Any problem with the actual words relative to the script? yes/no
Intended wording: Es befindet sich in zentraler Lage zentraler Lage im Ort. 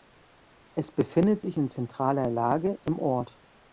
yes